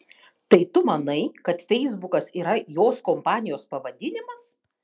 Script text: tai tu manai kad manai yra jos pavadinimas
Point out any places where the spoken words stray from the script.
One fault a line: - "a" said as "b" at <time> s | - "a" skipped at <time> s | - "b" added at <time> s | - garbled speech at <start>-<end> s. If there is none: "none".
- "manai" said as "feisbukas" at 1.7 s
- "kompanijos" added at 3.1 s